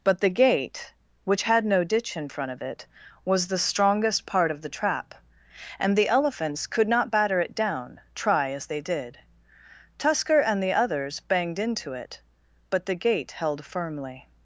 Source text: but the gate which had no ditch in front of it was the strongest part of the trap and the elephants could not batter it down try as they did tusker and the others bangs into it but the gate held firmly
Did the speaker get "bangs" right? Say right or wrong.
wrong